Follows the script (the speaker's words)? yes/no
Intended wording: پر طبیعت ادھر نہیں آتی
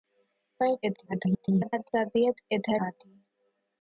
no